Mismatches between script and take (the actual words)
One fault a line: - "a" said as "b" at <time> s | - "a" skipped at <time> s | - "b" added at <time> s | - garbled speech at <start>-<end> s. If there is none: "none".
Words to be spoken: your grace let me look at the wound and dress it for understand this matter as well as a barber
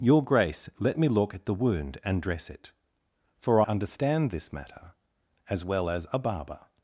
none